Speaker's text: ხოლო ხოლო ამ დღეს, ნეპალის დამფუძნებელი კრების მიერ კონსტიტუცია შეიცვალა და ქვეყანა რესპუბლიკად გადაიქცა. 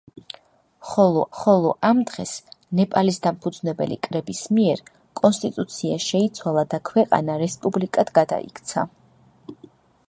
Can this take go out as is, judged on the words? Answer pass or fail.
pass